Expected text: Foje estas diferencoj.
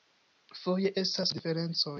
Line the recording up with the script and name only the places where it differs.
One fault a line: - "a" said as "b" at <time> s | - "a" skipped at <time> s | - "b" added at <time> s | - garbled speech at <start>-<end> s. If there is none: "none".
none